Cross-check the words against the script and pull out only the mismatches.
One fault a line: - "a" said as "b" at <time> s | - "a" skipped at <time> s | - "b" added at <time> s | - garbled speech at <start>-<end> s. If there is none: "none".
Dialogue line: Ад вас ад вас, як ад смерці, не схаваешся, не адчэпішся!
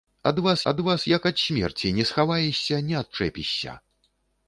none